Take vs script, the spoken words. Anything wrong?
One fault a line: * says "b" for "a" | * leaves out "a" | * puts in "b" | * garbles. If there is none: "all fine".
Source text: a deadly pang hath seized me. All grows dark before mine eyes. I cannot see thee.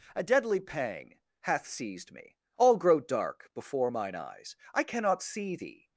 * says "grow" for "grows"